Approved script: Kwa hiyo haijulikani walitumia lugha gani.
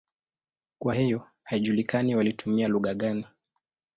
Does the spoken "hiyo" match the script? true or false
true